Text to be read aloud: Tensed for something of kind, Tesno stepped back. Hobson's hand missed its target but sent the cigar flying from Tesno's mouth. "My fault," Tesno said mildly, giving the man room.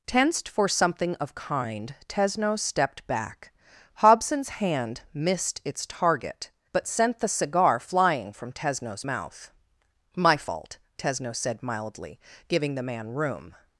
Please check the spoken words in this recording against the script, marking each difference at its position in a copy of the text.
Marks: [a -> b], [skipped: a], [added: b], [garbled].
Tensed for something of kind, Tesno stepped back. Hobson's hand missed its target but sent the cigar flying from Tesno's mouth. "My fault," Tesno said mildly, giving the man room.